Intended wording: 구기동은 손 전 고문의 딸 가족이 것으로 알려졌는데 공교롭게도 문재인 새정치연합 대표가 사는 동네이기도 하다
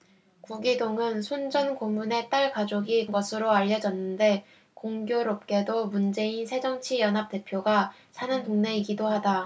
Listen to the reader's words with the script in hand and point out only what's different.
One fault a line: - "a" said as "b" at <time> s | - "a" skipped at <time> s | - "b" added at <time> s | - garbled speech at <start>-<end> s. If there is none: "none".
none